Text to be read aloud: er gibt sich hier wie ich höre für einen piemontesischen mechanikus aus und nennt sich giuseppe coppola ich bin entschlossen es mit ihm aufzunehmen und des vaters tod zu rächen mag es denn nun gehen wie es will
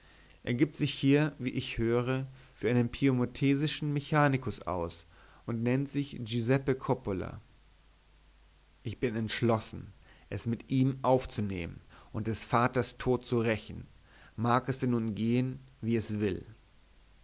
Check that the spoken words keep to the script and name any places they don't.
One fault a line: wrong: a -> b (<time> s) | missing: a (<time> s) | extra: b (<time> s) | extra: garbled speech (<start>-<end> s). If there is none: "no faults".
no faults